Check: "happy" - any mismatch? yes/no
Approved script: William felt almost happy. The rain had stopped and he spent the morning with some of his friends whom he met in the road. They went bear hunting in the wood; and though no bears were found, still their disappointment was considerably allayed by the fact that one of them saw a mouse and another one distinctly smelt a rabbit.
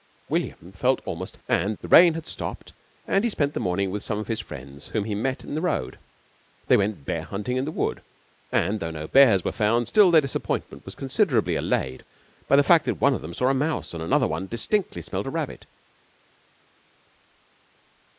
yes